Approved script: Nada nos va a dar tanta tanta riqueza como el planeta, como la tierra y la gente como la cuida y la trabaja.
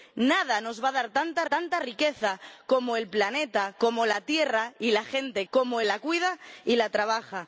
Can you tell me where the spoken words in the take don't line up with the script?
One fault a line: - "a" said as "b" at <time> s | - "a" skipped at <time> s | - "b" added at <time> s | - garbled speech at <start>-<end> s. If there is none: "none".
none